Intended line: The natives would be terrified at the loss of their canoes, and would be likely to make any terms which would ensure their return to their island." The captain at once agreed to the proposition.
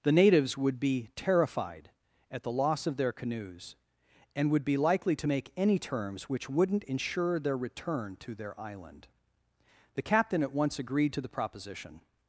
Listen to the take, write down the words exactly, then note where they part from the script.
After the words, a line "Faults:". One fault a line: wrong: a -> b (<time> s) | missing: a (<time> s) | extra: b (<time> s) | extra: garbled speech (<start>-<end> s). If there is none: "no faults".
The natives would be terrified at the loss of their canoes, and would be likely to make any terms which wouldn't ensure their return to their island." The captain at once agreed to the proposition.
Faults:
wrong: would -> wouldn't (6.5 s)